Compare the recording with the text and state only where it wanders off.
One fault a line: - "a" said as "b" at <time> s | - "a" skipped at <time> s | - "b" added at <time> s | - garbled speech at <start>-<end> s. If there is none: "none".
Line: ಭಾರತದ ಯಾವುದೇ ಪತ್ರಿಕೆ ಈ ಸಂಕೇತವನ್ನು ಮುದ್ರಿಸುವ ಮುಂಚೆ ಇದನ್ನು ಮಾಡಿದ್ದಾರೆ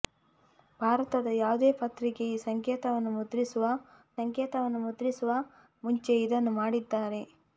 - "ಸಂಕೇತವನ್ನು ಮುದ್ರಿಸುವ" added at 4.2 s